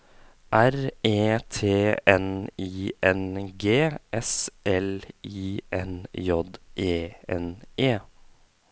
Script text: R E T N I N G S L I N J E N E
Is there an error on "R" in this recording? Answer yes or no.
no